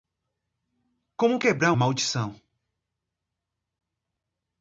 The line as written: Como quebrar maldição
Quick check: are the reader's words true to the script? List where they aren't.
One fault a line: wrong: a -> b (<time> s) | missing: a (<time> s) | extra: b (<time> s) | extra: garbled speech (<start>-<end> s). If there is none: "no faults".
no faults